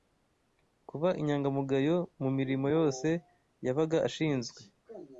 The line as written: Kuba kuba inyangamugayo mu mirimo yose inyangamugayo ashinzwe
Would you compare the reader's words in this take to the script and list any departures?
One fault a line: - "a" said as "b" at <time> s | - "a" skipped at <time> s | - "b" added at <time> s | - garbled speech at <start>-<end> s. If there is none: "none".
- "kuba" skipped at 1.1 s
- "inyangamugayo" said as "yabaga" at 3.6 s